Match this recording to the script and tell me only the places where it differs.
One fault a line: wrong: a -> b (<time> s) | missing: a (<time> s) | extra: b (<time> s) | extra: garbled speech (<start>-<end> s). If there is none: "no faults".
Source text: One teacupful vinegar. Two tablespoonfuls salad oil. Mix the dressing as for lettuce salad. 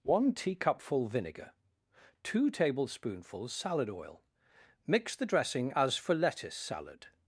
no faults